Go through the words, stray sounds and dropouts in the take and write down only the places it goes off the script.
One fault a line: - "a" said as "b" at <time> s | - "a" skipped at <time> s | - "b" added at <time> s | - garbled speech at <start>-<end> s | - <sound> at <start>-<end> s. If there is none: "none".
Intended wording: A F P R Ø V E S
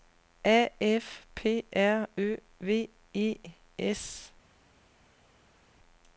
none